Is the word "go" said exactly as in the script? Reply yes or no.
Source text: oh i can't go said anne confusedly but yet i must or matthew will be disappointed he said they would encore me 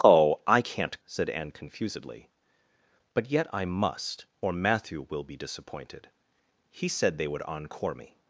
no